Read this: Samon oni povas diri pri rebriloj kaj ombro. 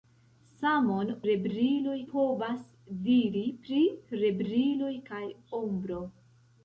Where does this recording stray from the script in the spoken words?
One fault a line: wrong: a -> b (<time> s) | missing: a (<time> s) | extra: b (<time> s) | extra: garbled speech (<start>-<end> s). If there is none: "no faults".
wrong: oni -> rebriloj (1.3 s)